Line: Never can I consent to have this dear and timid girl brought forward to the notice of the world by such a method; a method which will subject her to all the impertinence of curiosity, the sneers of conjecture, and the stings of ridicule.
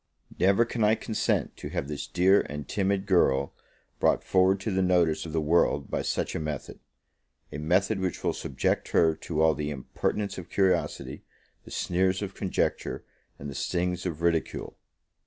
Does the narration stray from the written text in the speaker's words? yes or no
no